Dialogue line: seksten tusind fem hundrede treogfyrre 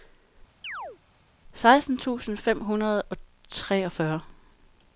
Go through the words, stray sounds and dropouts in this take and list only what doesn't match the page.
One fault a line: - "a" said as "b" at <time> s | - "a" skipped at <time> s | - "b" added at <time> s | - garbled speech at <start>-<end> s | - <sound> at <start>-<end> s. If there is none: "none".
- chirp at 0.6-1.0 s
- "og" added at 3.0 s